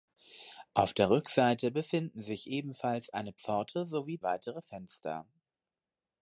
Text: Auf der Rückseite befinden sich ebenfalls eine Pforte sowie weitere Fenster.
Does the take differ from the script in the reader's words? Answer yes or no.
no